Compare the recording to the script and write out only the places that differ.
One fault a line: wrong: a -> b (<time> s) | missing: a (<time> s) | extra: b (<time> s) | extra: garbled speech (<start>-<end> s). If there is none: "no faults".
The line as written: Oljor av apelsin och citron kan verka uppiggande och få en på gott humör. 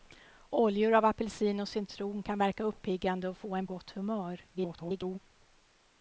missing: på (3.7 s)
extra: garbled speech (4.5-5.2 s)